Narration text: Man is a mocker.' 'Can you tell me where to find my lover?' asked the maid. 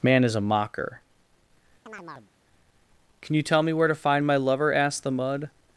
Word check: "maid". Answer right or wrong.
wrong